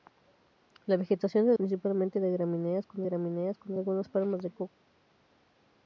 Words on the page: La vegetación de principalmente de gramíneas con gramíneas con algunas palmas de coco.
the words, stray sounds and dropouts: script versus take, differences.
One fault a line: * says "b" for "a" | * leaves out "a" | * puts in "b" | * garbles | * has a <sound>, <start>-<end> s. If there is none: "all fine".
all fine